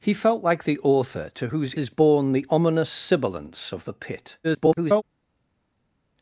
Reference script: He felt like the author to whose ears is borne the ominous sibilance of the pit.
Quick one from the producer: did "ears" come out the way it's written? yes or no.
no